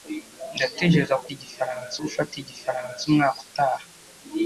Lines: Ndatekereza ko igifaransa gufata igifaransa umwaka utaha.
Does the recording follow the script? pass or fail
pass